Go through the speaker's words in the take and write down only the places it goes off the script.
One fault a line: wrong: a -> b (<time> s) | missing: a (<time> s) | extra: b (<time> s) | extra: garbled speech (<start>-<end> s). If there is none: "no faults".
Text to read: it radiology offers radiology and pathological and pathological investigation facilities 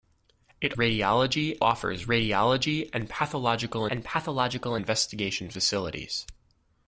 no faults